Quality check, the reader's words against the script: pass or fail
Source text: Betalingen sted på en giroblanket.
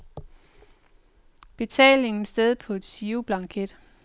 pass